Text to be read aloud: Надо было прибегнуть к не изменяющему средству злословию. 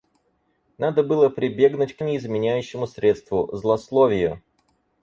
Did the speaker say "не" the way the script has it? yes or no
yes